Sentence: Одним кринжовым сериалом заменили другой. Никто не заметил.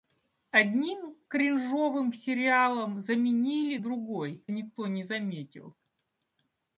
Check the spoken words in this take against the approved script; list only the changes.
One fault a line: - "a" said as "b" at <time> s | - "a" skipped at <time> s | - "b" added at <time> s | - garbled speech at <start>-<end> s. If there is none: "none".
none